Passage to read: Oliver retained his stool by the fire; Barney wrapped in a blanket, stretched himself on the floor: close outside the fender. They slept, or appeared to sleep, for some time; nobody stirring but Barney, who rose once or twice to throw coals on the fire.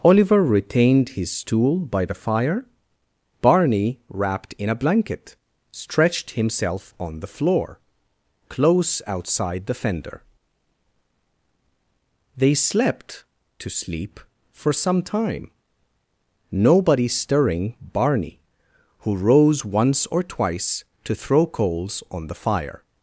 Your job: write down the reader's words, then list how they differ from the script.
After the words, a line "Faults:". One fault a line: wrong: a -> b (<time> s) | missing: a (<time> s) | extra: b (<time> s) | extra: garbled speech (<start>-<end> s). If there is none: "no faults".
Oliver retained his stool by the fire; Barney wrapped in a blanket, stretched himself on the floor: close outside the fender. They slept, to sleep, for some time; nobody stirring Barney, who rose once or twice to throw coals on the fire.
Faults:
missing: or appeared (13.2 s)
missing: but (17.7 s)